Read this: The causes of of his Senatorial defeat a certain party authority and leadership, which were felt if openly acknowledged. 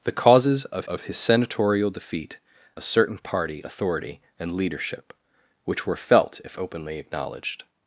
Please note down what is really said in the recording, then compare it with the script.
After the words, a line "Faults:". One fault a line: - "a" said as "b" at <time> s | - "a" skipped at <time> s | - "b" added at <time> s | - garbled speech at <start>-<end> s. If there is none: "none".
The causes of of his Senatorial defeat a certain party authority and leadership, which were felt if openly acknowledged.
Faults:
none